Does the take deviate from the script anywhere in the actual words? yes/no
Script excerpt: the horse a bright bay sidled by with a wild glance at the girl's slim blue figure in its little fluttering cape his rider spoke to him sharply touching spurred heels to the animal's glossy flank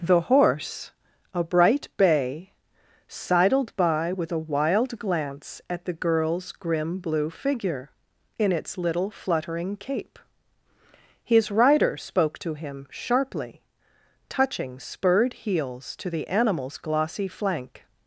yes